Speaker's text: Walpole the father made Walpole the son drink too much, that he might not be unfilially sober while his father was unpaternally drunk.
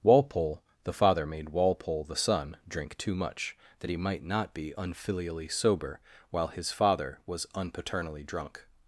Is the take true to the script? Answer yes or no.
yes